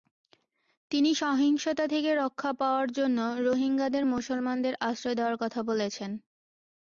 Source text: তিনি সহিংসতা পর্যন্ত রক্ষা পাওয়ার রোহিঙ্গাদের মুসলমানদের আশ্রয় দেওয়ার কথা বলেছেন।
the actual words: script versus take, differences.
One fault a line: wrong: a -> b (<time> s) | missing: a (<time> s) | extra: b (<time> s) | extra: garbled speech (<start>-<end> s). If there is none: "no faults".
wrong: পর্যন্ত -> থেকে (1.9 s)
extra: জন্য (2.9 s)